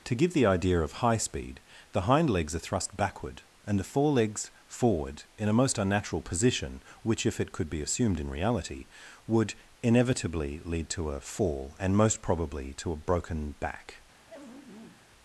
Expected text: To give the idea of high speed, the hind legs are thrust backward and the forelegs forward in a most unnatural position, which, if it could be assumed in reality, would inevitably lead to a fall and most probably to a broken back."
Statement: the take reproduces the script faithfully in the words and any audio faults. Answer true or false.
false